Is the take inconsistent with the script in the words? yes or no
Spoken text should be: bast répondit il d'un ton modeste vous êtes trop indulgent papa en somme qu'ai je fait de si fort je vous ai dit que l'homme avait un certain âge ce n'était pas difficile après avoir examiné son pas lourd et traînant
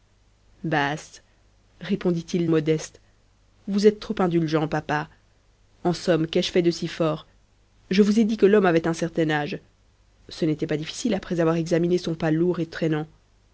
yes